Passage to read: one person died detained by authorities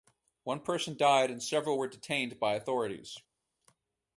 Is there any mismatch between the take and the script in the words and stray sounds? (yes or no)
yes